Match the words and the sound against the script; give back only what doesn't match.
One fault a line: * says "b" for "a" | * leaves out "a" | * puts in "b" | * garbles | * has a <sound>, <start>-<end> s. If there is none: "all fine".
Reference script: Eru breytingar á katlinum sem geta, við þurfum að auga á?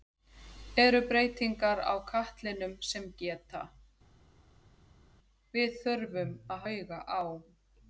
all fine